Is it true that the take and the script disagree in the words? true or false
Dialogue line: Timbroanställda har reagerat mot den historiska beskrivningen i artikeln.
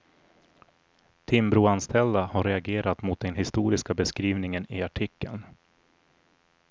false